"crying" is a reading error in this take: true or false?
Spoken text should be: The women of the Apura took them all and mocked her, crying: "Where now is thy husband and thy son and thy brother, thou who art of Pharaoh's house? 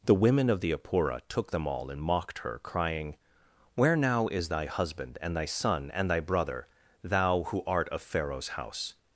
false